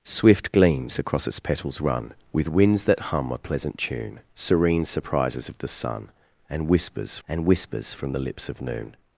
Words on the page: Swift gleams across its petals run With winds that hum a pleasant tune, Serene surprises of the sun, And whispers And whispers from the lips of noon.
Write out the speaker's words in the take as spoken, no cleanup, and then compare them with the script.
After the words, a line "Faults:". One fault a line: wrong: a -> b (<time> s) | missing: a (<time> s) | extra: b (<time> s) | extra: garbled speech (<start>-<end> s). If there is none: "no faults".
Swift gleams across its petals run With winds that hum a pleasant tune, Serene surprises of the sun, And whispers And whispers from the lips of noon.
Faults:
no faults